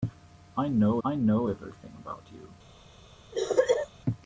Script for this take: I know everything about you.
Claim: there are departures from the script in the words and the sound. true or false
true